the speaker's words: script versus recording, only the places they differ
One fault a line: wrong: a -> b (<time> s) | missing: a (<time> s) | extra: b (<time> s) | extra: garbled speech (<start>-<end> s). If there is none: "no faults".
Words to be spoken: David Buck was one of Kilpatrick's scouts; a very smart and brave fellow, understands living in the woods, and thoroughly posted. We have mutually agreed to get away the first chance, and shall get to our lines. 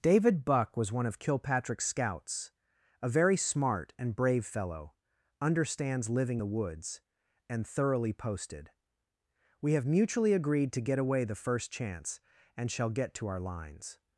missing: in (6.4 s)